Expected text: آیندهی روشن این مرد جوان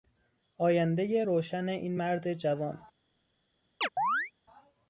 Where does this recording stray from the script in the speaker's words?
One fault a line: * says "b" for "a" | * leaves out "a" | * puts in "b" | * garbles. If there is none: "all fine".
all fine